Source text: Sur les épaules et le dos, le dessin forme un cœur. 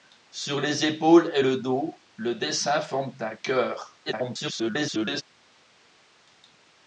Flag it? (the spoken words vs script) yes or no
yes